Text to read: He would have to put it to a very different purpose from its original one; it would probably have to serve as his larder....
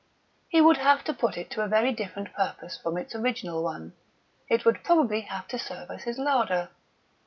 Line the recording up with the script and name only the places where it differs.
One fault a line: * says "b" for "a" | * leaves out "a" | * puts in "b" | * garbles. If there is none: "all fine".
all fine